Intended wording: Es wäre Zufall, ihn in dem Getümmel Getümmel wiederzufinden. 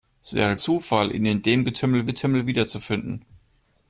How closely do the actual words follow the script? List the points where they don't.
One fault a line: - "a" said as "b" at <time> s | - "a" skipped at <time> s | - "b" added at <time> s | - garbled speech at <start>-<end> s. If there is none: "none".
none